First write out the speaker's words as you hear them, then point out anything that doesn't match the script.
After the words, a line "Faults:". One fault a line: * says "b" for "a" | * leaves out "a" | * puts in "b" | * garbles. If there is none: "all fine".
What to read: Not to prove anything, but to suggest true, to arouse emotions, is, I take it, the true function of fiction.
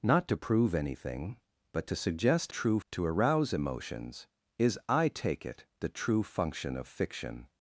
Not to prove anything, but to suggest true, to arouse emotions, is, I take it, the true function of fiction.
Faults:
all fine